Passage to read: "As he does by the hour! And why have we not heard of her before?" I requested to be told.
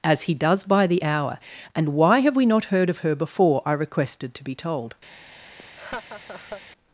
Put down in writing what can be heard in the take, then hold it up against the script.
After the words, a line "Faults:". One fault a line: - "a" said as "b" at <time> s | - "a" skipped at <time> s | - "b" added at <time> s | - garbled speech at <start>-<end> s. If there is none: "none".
"As he does by the hour! And why have we not heard of her before?" I requested to be told.
Faults:
none